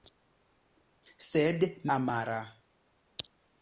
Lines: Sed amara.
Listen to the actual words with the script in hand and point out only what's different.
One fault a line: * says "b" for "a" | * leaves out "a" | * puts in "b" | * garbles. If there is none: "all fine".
all fine